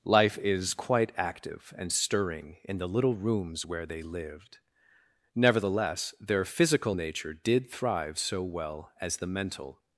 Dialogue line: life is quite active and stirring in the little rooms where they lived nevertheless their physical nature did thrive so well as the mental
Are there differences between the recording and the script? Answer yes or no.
no